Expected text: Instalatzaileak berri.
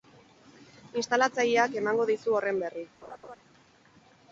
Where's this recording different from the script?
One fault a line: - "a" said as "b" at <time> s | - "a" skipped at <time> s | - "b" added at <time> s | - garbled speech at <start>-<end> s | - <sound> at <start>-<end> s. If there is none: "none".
- "emango dizu horren" added at 1.8 s
- laugh at 3.0-3.4 s